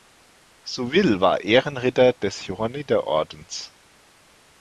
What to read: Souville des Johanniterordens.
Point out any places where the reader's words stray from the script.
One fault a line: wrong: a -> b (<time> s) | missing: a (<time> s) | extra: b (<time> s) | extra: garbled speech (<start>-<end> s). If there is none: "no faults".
extra: war Ehrenritter (1.2 s)